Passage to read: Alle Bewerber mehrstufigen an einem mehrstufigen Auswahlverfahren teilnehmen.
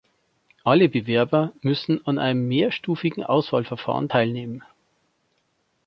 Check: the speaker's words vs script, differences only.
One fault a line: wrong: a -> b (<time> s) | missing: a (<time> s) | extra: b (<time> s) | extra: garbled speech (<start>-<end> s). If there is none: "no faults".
wrong: mehrstufigen -> müssen (1.6 s)